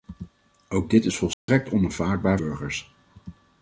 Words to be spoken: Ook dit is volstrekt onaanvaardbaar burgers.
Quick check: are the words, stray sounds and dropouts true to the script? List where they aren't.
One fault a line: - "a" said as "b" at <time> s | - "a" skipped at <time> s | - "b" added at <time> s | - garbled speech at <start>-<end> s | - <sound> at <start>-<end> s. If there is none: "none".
- dropout at 1.3-1.5 s